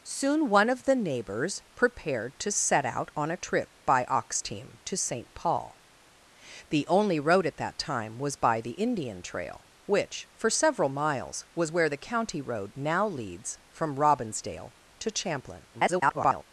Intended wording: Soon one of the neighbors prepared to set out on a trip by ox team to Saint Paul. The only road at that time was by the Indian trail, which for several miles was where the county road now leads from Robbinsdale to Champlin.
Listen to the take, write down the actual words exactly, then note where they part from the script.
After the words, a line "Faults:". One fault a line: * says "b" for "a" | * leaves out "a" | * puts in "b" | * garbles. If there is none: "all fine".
Soon one of the neighbors prepared to set out on a trip by ox team to Saint Paul. The only road at that time was by the Indian trail, which for several miles was where the county road now leads from Robbinsdale to Champlin. [garbled]
Faults:
* garbles